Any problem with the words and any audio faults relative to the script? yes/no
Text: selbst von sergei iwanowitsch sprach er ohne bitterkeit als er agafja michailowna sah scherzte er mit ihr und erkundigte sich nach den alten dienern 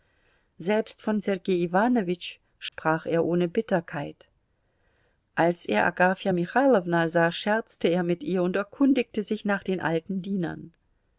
yes